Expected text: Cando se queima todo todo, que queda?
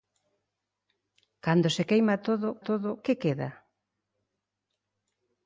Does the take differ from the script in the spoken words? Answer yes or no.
no